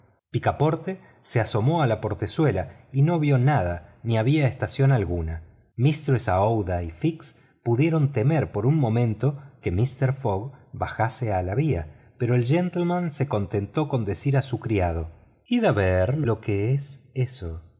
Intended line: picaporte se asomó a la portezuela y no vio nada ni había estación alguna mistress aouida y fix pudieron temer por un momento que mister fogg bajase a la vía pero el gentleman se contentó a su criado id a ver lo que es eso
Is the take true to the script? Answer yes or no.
no